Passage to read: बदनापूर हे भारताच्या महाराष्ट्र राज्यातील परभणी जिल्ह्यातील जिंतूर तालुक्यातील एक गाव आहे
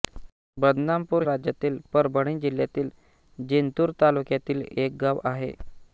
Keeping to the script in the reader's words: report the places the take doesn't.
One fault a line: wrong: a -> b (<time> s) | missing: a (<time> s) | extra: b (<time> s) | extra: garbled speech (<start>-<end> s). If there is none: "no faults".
missing: हे भारताच्या महाराष्ट्र (1.2 s)